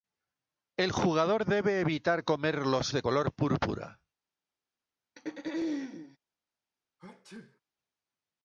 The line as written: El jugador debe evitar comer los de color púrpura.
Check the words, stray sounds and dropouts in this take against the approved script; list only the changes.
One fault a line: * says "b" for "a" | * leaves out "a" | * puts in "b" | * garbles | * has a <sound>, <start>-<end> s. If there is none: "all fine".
* has a throat clearing, 5.2-6.2 s
* has a sneeze, 7.0-7.6 s